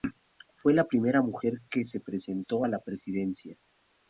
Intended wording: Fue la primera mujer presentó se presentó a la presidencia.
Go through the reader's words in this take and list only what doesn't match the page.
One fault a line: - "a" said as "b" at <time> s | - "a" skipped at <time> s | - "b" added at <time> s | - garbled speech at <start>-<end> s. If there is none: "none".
- "presentó" said as "que" at 1.7 s